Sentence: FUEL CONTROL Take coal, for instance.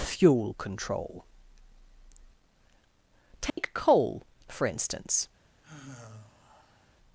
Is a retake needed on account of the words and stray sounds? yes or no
yes